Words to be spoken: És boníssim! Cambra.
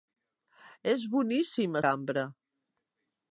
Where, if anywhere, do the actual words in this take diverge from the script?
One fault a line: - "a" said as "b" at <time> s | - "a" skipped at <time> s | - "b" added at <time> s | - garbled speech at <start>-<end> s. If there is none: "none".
none